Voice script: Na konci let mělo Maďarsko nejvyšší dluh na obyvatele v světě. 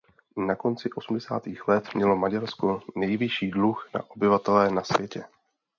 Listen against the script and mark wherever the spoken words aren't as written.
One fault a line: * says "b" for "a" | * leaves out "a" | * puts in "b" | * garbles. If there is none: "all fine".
* puts in "osmdesátých"
* says "na" for "v"